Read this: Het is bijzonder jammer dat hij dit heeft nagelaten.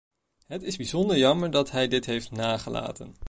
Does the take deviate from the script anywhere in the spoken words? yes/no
no